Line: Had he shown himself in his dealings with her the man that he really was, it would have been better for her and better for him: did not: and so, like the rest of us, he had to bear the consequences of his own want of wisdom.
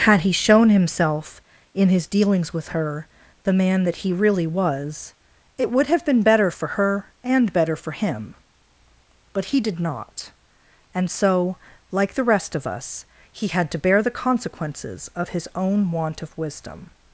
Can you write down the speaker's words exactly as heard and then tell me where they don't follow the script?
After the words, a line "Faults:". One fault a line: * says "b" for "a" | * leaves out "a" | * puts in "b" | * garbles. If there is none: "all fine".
Had he shown himself in his dealings with her the man that he really was, it would have been better for her and better for him: but he did not: and so, like the rest of us, he had to bear the consequences of his own want of wisdom.
Faults:
* puts in "but he"